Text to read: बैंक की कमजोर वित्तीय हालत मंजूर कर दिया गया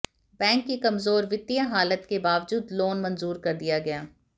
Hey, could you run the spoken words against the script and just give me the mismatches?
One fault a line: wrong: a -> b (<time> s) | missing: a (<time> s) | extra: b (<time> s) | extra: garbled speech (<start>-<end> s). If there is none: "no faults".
extra: के बावजूद लोन (2.1 s)